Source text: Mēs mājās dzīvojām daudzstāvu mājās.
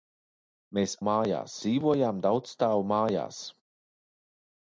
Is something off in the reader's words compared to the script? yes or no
no